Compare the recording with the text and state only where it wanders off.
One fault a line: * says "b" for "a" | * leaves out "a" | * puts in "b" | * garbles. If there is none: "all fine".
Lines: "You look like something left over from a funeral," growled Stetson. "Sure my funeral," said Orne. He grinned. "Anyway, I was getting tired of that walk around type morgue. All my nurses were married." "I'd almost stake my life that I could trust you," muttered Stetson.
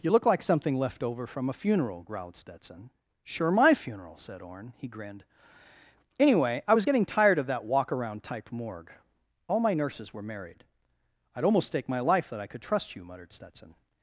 all fine